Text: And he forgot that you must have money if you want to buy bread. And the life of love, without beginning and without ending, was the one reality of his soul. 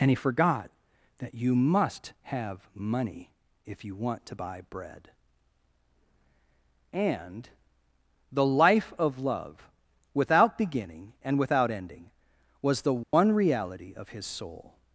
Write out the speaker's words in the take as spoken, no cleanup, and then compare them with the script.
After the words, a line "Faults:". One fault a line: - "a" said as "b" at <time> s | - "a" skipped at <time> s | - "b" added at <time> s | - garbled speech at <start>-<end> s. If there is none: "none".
And he forgot that you must have money if you want to buy bread. And the life of love, without beginning and without ending, was the one reality of his soul.
Faults:
none